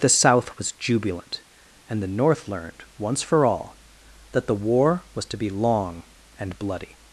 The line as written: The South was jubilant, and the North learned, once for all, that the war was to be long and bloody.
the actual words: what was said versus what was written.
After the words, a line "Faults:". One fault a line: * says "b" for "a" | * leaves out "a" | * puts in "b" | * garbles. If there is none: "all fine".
The South was jubilant, and the North learned, once for all, that the war was to be long and bloody.
Faults:
all fine